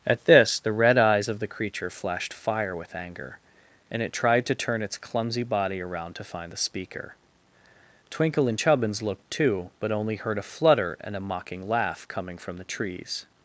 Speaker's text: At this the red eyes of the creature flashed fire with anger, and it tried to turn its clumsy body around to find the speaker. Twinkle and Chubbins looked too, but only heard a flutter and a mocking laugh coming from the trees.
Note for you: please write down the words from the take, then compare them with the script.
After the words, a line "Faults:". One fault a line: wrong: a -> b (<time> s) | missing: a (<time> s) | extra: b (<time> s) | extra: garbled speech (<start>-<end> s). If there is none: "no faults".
At this the red eyes of the creature flashed fire with anger, and it tried to turn its clumsy body around to find the speaker. Twinkle and Chubbins looked too, but only heard a flutter and a mocking laugh coming from the trees.
Faults:
no faults